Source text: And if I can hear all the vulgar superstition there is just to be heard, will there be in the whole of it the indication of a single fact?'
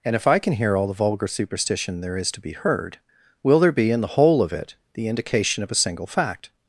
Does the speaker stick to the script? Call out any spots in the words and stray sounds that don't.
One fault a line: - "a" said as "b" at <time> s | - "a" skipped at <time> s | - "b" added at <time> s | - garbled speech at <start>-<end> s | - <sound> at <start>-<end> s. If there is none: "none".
- "just" skipped at 2.3 s